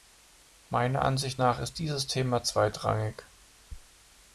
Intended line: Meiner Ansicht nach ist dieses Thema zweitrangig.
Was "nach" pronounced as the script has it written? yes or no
yes